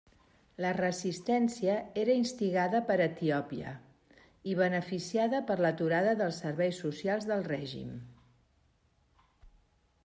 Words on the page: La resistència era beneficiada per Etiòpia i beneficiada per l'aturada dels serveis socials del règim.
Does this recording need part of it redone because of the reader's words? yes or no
yes